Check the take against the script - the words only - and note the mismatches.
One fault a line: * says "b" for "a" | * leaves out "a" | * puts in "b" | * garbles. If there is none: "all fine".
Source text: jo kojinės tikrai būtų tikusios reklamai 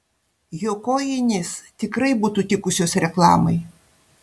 all fine